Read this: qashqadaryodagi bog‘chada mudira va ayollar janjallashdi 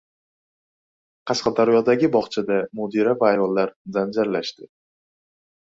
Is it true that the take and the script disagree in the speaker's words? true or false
false